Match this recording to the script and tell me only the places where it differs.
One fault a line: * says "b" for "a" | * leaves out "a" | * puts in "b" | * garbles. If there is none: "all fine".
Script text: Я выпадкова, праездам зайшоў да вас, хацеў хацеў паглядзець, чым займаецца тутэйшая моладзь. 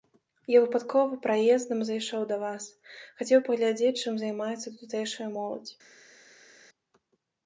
* leaves out "хацеў"